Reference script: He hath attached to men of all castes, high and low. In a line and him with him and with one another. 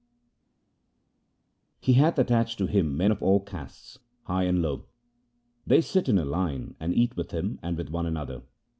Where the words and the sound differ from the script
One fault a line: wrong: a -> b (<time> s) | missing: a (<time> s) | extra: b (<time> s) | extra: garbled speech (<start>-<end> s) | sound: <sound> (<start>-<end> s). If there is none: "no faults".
extra: him (2.7 s)
extra: They sit (5.6 s)
wrong: him -> eat (6.9 s)